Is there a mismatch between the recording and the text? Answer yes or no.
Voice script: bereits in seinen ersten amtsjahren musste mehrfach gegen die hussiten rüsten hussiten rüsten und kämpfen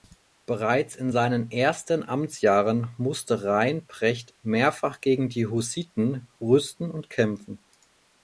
yes